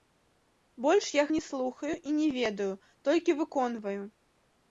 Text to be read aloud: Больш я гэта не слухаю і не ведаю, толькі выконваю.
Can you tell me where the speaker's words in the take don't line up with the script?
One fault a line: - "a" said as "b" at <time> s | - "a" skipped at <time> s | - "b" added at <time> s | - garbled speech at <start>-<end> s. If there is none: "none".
- "гэта" skipped at 1.2 s